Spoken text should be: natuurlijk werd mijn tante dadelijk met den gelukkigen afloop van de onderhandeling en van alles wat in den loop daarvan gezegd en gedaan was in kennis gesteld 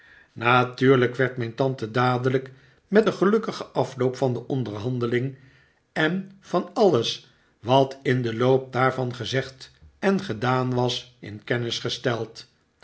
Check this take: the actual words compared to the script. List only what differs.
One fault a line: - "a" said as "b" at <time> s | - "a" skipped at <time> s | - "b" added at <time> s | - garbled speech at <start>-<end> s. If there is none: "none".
none